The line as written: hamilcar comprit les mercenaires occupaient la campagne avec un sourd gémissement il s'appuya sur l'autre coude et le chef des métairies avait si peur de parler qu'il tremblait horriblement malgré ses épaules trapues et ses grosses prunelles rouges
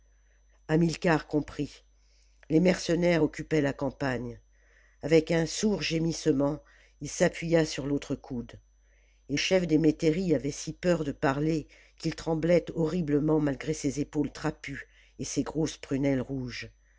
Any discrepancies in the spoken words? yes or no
yes